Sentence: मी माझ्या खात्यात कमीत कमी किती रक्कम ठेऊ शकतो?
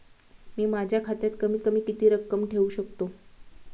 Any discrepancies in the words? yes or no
no